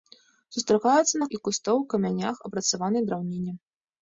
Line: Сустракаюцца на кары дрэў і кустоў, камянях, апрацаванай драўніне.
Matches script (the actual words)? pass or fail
fail